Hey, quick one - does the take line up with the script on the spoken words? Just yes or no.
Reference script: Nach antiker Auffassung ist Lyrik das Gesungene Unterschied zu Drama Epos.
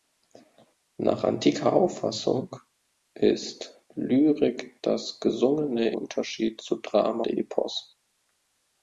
yes